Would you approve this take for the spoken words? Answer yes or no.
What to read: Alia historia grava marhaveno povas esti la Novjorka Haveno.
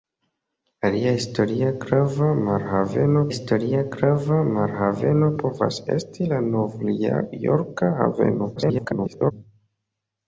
no